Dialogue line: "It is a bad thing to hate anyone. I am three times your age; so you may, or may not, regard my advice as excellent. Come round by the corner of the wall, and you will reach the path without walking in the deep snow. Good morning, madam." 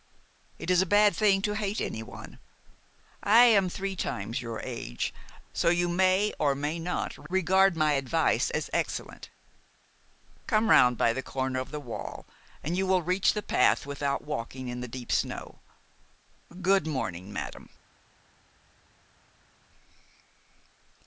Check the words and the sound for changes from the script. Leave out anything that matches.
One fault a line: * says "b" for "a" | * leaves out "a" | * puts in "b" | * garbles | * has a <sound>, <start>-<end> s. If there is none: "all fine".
all fine